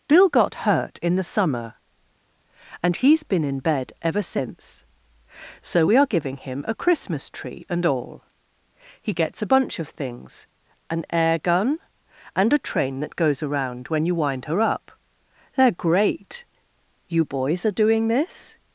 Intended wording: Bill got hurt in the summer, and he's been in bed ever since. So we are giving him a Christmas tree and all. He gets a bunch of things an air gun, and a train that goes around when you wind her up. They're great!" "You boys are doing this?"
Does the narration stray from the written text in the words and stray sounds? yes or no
no